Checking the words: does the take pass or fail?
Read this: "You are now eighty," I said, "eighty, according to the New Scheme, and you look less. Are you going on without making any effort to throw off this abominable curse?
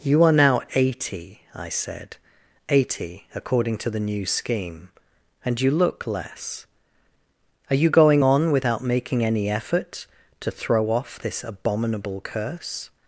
pass